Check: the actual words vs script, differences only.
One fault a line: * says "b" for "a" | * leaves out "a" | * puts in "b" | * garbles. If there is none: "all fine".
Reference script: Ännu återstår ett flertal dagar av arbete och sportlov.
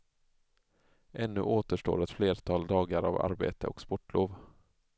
all fine